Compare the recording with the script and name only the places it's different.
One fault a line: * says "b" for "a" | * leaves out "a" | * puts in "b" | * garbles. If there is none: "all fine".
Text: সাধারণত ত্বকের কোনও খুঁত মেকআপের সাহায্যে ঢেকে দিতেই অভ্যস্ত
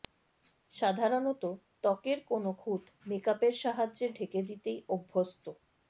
all fine